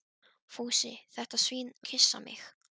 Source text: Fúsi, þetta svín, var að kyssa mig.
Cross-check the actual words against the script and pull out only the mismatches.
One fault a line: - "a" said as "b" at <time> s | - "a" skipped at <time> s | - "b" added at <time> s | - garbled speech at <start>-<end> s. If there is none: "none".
- "var" skipped at 1.7 s